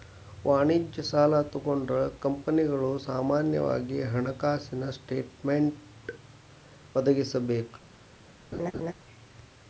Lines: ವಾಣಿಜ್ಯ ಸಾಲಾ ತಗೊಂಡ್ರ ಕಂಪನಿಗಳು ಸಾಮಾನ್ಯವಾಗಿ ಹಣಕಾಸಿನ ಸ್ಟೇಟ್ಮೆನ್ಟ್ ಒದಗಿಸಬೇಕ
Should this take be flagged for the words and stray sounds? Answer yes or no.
yes